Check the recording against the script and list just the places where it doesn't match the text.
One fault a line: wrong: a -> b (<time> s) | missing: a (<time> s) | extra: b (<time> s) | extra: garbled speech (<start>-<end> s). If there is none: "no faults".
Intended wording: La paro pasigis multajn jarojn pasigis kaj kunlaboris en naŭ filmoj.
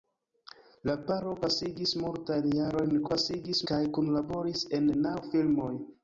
no faults